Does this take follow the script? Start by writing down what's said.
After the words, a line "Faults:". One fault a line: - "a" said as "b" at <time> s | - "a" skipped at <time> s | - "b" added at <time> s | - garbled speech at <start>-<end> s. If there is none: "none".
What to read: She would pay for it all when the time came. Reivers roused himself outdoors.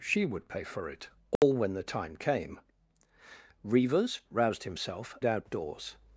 She would pay for it all when the time came. Reivers roused himself outdoors.
Faults:
none